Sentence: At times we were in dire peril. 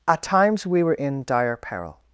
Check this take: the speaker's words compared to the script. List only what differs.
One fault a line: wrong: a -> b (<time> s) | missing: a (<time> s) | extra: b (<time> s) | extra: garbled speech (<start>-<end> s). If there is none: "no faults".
no faults